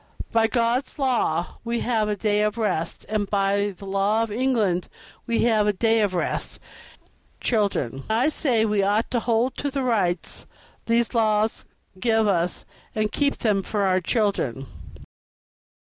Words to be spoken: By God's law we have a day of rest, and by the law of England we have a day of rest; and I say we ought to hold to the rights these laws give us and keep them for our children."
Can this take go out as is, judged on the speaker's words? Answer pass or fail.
fail